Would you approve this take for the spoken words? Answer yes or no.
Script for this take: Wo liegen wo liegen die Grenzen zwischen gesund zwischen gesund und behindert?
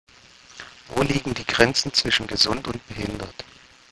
no